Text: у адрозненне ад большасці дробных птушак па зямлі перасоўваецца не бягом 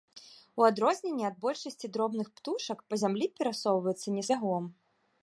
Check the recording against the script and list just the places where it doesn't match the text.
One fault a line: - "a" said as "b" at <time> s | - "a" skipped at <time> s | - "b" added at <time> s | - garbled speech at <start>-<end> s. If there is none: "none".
none